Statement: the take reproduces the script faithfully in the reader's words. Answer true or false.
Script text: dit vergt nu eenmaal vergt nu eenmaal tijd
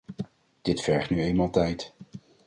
false